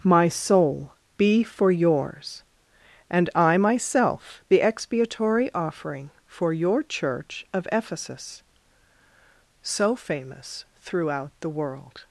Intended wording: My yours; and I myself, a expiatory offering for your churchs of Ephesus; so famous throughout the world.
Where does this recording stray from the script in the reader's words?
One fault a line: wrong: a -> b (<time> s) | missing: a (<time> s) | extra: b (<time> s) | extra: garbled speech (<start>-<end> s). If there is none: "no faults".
extra: soul be for (0.3 s)
wrong: a -> the (4.5 s)
wrong: churchs -> church (6.8 s)